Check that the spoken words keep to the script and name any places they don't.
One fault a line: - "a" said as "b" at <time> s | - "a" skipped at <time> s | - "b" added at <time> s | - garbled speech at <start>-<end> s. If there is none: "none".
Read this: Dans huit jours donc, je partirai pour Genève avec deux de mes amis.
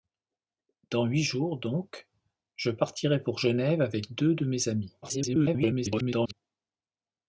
- garbled speech at 5.0-6.3 s